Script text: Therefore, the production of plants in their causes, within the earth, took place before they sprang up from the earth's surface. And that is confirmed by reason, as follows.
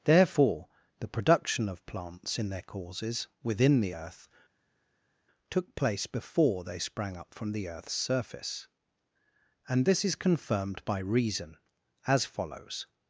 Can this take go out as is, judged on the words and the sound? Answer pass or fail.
fail